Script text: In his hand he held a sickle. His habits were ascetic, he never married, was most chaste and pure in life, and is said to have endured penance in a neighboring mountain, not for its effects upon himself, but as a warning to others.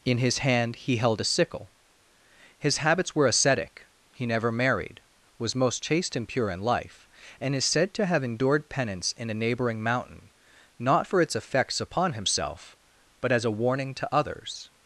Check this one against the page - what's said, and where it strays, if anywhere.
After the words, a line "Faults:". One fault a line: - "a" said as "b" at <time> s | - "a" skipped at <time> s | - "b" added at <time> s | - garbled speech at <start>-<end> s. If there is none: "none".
In his hand he held a sickle. His habits were ascetic, he never married, was most chaste and pure in life, and is said to have endured penance in a neighboring mountain, not for its effects upon himself, but as a warning to others.
Faults:
none